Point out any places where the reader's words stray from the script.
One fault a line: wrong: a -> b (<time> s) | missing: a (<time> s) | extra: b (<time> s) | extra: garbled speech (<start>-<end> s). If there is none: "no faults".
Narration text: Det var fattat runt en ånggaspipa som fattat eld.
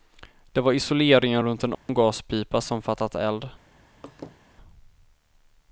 wrong: fattat -> isoleringen (0.7 s)